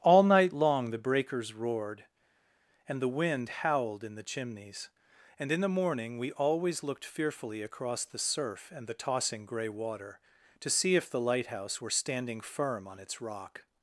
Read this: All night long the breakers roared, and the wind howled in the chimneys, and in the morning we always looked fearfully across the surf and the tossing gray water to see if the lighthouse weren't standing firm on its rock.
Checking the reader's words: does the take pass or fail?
fail